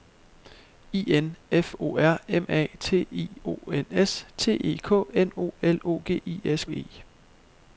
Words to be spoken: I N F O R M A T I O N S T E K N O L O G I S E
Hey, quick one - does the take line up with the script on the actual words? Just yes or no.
yes